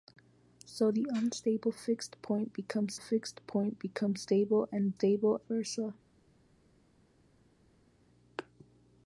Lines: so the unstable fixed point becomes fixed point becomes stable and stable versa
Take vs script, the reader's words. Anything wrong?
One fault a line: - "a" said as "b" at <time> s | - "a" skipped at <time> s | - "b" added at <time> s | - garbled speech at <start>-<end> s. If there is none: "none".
none